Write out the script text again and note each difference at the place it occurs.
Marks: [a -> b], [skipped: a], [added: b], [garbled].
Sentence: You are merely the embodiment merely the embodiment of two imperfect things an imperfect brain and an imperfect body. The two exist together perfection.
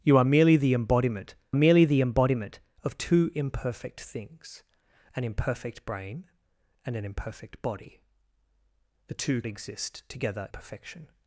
You are merely the embodiment merely the embodiment of two imperfect things an imperfect brain and an imperfect body. The two exist together perfection.